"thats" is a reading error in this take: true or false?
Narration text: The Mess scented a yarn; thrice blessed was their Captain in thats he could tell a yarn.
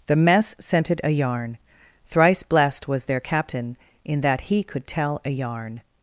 true